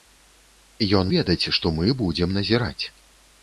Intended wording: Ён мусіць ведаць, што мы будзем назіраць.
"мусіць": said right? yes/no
no